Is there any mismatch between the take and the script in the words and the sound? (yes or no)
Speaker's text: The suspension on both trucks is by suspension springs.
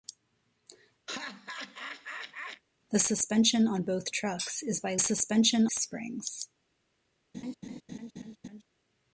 yes